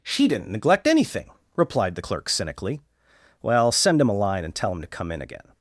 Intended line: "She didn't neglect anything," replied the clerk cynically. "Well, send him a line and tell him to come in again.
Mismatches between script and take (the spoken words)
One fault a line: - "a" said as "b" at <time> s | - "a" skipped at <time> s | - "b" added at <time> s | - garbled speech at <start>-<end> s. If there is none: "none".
none